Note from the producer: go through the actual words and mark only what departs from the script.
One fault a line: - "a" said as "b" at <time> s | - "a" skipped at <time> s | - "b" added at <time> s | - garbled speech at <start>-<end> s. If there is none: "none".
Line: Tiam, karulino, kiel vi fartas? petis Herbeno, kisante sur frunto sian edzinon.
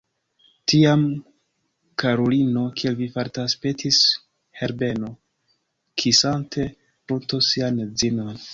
- "sur" skipped at 6.7 s